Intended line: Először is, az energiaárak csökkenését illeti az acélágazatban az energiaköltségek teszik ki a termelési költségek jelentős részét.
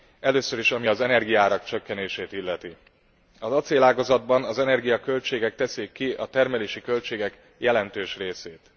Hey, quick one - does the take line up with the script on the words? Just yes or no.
no